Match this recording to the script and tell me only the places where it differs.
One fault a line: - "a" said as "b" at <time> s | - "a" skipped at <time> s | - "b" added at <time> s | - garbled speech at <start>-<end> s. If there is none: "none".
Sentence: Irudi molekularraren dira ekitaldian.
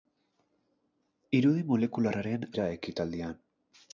none